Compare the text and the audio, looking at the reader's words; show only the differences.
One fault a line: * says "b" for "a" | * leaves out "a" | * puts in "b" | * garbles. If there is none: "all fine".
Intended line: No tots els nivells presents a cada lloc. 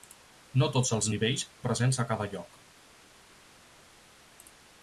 all fine